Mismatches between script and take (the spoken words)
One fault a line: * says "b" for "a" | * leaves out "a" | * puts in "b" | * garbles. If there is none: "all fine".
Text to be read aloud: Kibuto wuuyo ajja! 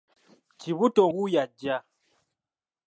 all fine